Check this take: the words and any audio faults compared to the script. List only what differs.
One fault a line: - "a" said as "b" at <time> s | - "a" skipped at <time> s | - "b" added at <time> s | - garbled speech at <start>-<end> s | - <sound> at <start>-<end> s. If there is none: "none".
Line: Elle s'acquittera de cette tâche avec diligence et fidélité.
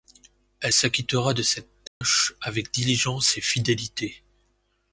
- dropout at 1.9-2.0 s